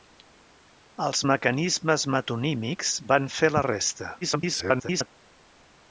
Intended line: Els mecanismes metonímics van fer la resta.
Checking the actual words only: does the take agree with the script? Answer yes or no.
no